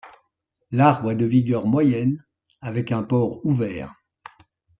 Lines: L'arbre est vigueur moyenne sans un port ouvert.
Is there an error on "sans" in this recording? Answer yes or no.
yes